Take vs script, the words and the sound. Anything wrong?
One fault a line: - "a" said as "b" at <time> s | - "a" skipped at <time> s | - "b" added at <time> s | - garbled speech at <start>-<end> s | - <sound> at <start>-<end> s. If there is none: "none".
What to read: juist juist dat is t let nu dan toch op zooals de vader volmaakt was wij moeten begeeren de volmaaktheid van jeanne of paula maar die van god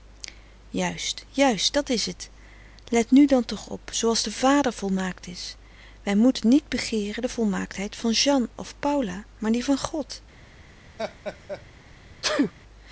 - "was" said as "is" at 5.3 s
- "niet" added at 6.5 s
- laugh at 11.0-11.6 s
- sneeze at 12.2-12.5 s